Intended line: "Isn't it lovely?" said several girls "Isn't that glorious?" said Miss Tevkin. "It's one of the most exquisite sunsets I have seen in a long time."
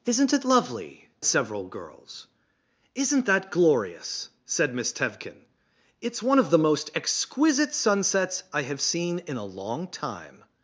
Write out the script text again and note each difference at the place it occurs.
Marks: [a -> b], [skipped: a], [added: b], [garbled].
"Isn't it lovely?" [skipped: said] several girls "Isn't that glorious?" said Miss Tevkin. "It's one of the most exquisite sunsets I have seen in a long time."